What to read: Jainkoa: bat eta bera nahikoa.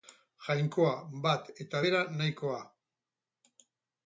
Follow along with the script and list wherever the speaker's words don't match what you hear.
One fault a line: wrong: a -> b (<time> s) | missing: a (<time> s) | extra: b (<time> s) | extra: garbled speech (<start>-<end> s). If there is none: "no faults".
no faults